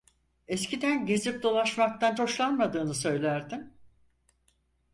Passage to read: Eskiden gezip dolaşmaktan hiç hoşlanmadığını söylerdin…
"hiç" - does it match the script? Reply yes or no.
no